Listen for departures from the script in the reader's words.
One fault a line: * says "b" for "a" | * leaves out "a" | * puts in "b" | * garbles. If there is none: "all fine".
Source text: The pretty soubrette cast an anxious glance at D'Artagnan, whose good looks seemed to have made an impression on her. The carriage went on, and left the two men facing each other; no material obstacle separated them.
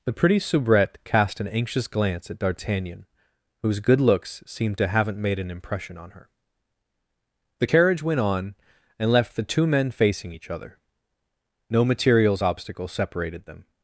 * says "haven't" for "have"
* says "materials" for "material"